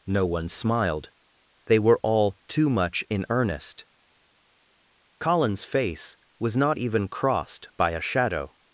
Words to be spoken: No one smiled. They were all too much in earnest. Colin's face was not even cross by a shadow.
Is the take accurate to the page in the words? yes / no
no